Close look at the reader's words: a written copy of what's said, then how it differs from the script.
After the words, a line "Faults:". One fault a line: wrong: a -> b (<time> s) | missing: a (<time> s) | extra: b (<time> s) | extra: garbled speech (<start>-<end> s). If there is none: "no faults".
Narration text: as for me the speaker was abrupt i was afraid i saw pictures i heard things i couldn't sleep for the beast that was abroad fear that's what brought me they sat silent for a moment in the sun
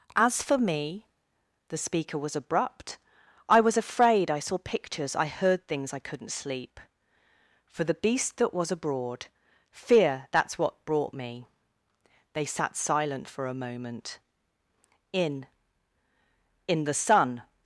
as for me the speaker was abrupt i was afraid i saw pictures i heard things i couldn't sleep for the beast that was abroad fear that's what brought me they sat silent for a moment in in the sun
Faults:
extra: in (16.7 s)